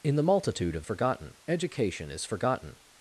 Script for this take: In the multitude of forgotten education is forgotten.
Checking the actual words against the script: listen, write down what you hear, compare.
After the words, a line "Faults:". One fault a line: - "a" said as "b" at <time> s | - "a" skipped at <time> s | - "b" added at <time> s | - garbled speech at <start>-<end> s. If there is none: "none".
In the multitude of forgotten education is forgotten.
Faults:
none